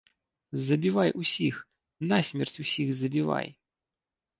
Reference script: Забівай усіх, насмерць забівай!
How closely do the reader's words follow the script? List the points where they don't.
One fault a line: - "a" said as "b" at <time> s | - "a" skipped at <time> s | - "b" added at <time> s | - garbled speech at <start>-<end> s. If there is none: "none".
- "усіх" added at 2.7 s